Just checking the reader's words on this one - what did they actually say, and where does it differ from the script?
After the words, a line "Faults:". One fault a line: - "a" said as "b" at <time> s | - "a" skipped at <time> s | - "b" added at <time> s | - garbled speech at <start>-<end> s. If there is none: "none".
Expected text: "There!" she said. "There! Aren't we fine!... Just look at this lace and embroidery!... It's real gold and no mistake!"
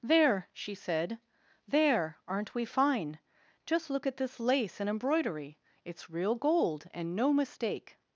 "There!" she said. "There! Aren't we fine!... Just look at this lace and embroidery!... It's real gold and no mistake!"
Faults:
none